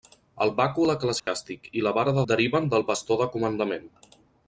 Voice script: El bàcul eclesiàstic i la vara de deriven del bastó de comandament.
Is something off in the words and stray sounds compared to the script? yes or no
yes